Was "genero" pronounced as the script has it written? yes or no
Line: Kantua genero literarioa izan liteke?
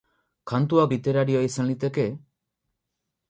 no